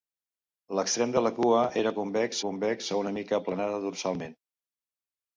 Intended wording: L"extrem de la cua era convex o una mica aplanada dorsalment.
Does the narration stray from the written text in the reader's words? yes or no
yes